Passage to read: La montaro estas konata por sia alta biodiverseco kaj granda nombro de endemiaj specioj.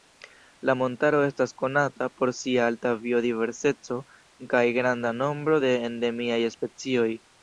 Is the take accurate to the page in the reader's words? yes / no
yes